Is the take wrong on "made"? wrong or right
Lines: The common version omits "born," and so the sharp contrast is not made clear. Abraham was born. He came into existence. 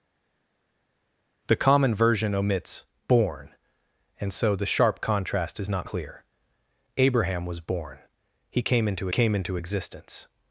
wrong